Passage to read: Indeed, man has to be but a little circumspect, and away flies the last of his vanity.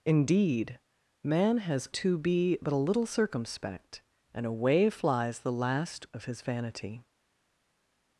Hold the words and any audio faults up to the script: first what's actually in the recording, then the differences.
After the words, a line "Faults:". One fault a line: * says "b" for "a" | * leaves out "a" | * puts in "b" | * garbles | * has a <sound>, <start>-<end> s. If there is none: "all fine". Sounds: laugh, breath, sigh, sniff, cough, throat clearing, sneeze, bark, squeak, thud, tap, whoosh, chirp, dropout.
Indeed, man has to be but a little circumspect, and away flies the last of his vanity.
Faults:
all fine